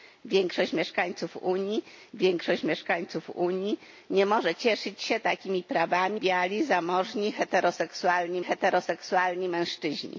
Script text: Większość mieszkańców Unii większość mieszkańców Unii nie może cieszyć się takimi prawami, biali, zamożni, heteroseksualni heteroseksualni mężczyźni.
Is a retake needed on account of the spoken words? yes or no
no